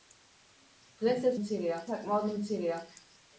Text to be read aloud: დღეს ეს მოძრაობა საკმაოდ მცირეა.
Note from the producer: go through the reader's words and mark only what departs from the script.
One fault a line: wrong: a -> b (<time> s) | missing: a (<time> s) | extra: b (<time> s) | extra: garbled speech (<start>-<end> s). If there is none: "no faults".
wrong: მოძრაობა -> მცირეა (1.4 s)